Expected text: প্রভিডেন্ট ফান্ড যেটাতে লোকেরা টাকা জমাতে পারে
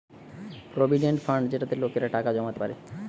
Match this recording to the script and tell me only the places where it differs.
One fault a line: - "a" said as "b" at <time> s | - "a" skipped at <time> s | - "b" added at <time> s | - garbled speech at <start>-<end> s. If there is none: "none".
none